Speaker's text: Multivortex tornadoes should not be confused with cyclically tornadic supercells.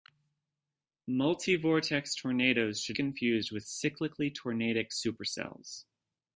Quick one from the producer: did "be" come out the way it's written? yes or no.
no